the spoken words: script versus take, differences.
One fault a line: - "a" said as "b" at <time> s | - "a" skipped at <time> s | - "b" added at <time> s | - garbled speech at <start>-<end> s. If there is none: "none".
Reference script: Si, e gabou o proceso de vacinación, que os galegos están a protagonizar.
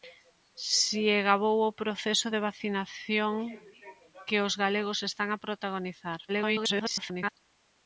- garbled speech at 6.3-7.3 s